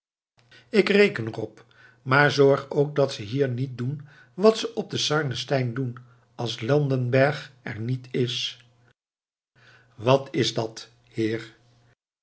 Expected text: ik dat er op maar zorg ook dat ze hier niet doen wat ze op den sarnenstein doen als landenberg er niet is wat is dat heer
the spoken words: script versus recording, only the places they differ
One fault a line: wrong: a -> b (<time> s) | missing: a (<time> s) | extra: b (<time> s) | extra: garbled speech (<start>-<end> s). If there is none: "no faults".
wrong: dat -> reken (0.9 s)